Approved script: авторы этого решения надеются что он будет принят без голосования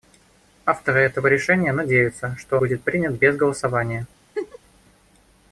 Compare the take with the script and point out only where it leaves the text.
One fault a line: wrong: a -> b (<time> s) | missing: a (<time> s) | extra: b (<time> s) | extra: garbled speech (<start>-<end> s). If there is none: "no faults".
missing: он (2.6 s)